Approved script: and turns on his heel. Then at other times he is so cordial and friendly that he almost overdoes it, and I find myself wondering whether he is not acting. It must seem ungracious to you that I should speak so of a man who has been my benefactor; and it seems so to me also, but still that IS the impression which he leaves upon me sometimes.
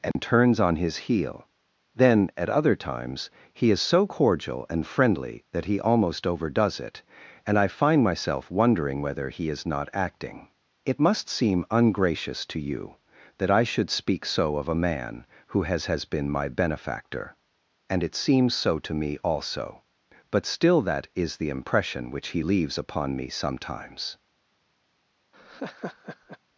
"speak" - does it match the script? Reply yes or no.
yes